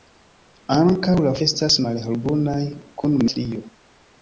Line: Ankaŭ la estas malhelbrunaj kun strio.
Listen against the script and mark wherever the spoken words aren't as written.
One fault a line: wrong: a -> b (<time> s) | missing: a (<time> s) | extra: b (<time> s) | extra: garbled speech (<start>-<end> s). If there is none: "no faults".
no faults